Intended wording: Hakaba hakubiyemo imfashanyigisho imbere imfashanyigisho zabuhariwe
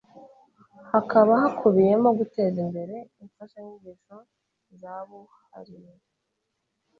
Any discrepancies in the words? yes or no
yes